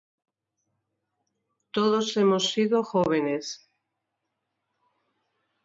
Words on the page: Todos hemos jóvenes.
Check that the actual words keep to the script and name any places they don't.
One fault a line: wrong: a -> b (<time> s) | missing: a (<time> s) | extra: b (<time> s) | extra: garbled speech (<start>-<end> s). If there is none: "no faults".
extra: sido (2.5 s)